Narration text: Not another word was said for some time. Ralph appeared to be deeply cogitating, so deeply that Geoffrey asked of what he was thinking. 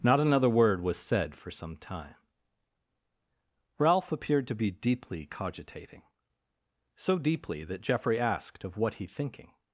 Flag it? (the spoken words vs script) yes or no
yes